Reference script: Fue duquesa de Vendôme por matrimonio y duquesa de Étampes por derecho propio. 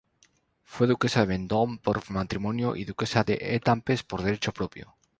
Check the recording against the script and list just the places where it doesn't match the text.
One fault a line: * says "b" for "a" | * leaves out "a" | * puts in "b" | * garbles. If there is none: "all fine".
all fine